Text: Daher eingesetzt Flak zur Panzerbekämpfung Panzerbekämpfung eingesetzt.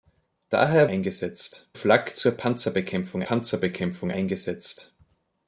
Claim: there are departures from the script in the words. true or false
false